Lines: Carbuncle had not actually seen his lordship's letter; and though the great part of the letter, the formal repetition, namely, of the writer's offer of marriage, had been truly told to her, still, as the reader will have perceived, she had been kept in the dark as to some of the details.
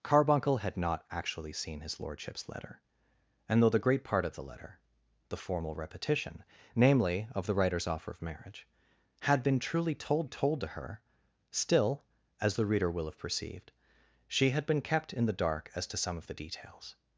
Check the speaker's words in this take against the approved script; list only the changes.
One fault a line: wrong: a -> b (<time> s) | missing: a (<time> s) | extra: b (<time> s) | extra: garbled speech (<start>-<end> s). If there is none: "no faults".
extra: told (10.2 s)